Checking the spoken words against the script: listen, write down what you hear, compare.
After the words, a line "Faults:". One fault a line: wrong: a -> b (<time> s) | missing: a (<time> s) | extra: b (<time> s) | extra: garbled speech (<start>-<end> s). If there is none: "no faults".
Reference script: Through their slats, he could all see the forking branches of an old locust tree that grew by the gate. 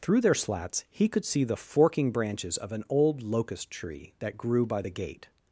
Through their slats, he could see the forking branches of an old locust tree that grew by the gate.
Faults:
missing: all (1.2 s)